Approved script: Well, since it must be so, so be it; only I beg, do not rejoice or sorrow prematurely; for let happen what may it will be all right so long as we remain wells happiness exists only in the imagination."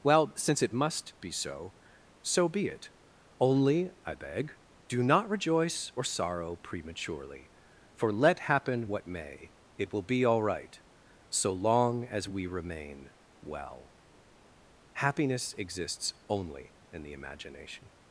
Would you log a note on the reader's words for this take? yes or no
yes